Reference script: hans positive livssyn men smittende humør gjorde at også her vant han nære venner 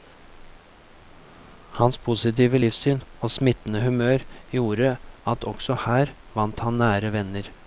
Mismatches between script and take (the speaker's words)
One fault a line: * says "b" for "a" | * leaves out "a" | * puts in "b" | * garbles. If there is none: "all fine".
* says "og" for "men"